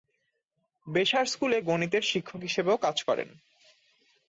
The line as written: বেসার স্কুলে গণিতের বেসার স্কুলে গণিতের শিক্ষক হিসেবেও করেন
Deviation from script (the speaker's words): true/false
true